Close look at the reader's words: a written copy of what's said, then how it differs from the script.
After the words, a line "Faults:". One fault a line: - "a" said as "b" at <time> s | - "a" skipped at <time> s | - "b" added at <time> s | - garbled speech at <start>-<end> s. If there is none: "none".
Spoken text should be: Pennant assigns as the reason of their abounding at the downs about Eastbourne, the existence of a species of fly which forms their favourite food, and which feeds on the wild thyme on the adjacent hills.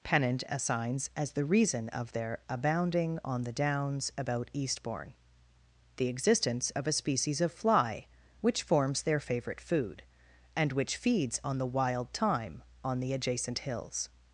Pennant assigns as the reason of their abounding on the downs about Eastbourne, the existence of a species of fly which forms their favourite food, and which feeds on the wild thyme on the adjacent hills.
Faults:
- "at" said as "on" at 3.2 s